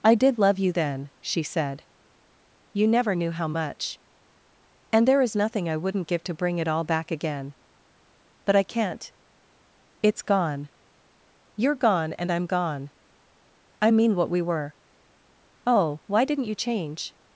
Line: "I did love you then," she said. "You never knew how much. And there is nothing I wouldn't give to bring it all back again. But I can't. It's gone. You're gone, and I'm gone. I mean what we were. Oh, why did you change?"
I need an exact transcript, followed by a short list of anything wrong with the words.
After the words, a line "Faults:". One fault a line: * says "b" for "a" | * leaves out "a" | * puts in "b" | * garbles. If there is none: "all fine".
"I did love you then," she said. "You never knew how much. And there is nothing I wouldn't give to bring it all back again. But I can't. It's gone. You're gone, and I'm gone. I mean what we were. Oh, why didn't you change?"
Faults:
* says "didn't" for "did"